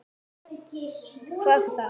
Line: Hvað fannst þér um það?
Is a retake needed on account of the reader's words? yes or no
yes